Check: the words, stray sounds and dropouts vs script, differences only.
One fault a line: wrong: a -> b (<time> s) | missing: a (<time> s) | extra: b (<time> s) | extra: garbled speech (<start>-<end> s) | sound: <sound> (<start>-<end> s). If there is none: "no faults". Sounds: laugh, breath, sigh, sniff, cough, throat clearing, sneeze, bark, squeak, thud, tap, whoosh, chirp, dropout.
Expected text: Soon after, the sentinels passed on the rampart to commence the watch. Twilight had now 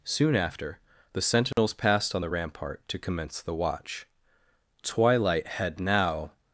sound: dropout (1.5-1.6 s)